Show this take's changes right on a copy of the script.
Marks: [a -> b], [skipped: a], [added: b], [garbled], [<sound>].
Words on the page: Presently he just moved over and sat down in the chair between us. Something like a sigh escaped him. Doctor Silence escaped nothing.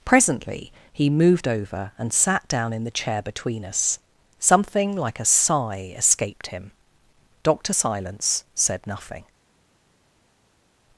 Presently he [skipped: just] moved over and sat down in the chair between us. Something like a sigh escaped him. Doctor Silence [escaped -> said] nothing.